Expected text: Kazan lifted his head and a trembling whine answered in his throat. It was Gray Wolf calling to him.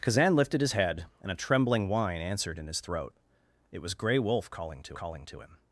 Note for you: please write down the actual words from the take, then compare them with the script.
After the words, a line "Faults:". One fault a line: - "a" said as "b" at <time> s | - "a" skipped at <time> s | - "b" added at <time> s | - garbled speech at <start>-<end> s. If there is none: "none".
Kazan lifted his head and a trembling whine answered in his throat. It was Gray Wolf calling to calling to him.
Faults:
- "calling to" added at 4.9 s